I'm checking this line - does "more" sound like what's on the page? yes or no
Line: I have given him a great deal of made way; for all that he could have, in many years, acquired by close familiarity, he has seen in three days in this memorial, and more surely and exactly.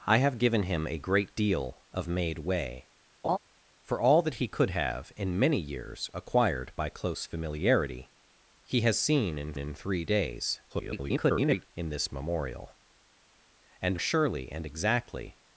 no